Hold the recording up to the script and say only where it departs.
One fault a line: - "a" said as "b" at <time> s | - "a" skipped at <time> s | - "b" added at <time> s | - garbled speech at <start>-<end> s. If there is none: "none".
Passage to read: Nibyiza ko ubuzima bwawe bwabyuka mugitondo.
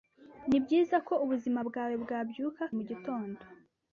none